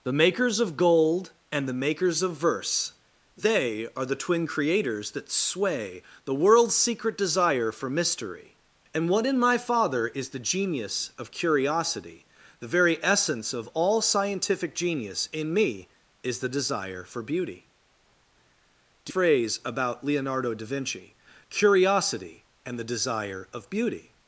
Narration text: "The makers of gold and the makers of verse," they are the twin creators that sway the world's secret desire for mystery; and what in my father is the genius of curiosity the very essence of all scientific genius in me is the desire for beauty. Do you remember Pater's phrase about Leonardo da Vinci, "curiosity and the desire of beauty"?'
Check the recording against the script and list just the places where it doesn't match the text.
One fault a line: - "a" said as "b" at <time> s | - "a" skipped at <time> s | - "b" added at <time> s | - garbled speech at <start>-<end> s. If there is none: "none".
- "you remember Pater's" skipped at 19.1 s